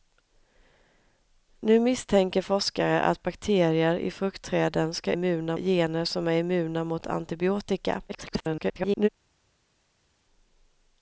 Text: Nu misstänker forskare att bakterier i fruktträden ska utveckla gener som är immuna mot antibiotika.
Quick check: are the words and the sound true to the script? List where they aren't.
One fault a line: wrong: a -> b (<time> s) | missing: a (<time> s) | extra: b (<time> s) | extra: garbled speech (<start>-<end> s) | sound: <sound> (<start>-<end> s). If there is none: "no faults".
wrong: utveckla -> immuna (5.1 s)
extra: garbled speech (8.1-9.1 s)